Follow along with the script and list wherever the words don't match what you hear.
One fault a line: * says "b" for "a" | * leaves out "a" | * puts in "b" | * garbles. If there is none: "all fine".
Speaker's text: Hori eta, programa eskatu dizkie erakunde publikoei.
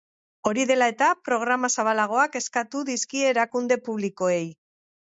* puts in "dela"
* puts in "zabalagoak"